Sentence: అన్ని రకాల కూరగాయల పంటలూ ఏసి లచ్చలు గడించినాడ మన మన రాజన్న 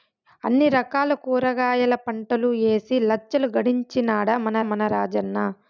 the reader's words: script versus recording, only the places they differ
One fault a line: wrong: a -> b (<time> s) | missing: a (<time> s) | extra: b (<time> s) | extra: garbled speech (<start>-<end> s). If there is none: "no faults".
no faults